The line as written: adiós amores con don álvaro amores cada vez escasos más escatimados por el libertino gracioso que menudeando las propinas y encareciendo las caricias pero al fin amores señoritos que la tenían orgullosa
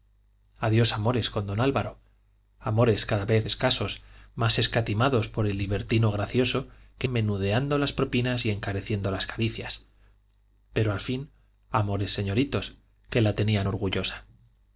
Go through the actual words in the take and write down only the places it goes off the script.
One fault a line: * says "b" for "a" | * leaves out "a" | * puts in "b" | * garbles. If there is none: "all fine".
all fine